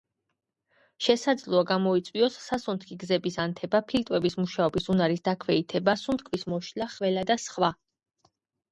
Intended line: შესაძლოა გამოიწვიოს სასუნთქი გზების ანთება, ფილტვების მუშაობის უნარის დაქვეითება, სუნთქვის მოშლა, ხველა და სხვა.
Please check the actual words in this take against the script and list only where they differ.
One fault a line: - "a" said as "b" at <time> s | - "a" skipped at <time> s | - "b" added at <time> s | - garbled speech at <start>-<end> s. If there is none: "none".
none